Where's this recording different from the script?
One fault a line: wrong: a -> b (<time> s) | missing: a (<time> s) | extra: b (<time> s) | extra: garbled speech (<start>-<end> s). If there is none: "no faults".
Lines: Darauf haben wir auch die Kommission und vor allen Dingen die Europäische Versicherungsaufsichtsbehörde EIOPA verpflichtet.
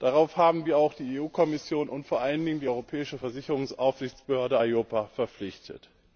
no faults